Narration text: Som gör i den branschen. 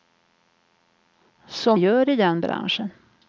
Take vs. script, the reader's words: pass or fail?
pass